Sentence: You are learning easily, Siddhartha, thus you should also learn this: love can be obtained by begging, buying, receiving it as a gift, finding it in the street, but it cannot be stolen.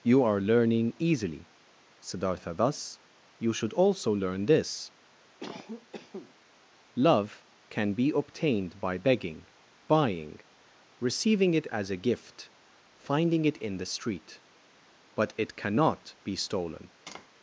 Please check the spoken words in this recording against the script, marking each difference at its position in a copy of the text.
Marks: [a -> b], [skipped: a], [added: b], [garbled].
You are learning easily, Siddhartha, thus you should also learn this: love can be obtained by begging, buying, receiving it as a gift, finding it in the street, but it cannot be stolen.